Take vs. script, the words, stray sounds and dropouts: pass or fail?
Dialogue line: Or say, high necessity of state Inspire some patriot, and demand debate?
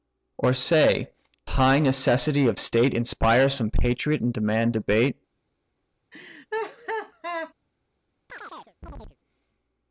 fail